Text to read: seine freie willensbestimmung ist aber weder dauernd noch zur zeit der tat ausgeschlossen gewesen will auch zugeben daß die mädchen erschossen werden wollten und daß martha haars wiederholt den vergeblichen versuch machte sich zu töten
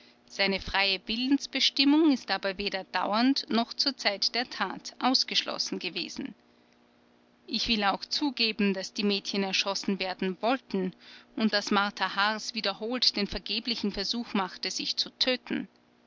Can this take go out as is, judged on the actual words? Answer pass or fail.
fail